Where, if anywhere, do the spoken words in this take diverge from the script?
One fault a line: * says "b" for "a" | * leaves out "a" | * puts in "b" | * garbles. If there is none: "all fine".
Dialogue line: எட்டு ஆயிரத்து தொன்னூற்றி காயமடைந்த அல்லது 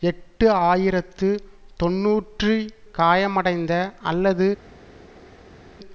all fine